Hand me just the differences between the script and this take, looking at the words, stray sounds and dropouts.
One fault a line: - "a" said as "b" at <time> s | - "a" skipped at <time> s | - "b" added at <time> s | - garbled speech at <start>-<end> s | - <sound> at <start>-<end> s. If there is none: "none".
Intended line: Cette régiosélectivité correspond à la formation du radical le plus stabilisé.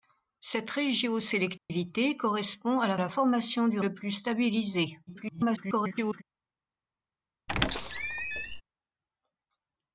- dropout at 1.6-1.7 s
- "la" added at 3.0 s
- "radical" skipped at 3.8 s
- garbled speech at 5.1-6.2 s
- squeak at 7.5-8.6 s